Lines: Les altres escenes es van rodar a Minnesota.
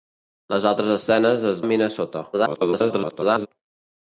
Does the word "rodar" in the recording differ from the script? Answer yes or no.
yes